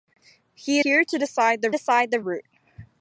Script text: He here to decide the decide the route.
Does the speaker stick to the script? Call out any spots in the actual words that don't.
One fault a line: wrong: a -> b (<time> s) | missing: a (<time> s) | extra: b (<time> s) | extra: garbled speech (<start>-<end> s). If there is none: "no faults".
no faults